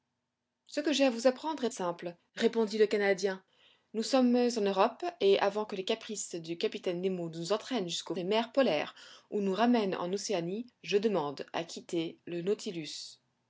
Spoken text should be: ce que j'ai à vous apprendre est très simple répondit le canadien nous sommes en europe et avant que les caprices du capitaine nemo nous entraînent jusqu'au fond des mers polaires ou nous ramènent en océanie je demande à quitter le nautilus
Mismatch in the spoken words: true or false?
true